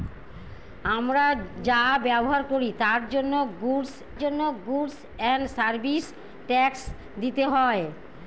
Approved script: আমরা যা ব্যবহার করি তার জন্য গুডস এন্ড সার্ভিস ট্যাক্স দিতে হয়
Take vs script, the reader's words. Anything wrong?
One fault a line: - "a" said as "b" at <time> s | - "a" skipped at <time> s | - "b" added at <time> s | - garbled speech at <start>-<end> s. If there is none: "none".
- "জন্য গুডস" added at 4.2 s